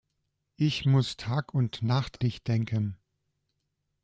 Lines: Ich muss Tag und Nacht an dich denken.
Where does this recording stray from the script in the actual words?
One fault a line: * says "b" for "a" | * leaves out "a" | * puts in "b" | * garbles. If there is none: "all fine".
* leaves out "an"